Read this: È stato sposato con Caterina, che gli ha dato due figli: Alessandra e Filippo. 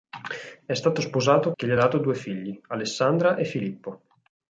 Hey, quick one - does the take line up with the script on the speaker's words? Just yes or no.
no